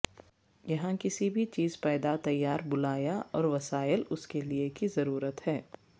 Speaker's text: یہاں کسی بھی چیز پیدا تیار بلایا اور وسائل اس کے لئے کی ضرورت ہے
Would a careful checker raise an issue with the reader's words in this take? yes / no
no